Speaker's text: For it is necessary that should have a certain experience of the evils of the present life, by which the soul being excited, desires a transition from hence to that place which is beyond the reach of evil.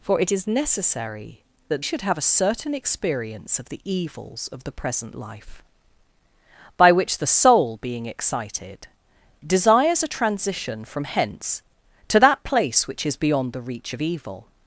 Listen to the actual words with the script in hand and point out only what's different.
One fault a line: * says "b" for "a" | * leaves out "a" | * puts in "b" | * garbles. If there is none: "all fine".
all fine